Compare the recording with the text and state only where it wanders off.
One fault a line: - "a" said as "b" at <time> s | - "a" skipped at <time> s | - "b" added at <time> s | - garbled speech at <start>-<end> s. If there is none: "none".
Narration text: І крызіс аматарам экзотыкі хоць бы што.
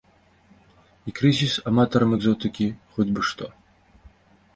none